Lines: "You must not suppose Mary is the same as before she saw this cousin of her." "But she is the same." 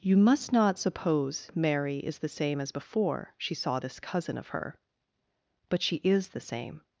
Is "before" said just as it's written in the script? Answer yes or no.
yes